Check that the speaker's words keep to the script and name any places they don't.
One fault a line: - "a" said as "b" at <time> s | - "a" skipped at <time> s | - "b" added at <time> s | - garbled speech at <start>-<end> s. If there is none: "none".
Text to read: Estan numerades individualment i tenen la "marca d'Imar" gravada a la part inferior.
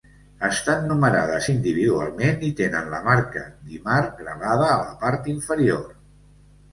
none